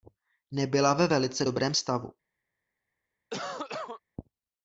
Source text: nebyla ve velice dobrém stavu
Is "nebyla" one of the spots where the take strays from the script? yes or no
no